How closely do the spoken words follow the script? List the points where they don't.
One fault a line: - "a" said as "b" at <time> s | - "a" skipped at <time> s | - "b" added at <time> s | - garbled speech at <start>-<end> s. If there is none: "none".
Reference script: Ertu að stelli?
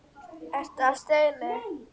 none